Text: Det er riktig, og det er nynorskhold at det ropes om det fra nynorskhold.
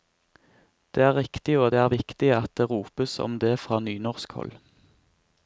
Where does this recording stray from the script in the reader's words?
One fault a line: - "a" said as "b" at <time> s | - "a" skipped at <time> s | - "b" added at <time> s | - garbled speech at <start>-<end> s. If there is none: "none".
- "nynorskhold" said as "viktig" at 1.9 s